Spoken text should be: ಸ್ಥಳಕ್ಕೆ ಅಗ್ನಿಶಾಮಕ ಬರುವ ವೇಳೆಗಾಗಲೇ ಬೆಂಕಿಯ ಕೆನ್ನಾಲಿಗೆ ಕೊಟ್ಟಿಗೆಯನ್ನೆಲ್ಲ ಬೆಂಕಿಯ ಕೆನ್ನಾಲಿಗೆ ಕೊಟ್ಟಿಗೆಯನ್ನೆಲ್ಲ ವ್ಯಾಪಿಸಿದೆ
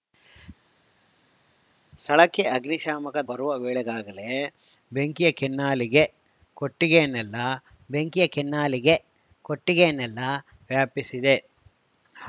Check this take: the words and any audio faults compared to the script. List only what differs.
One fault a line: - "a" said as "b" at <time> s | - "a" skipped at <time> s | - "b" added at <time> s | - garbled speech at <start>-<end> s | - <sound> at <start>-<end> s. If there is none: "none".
none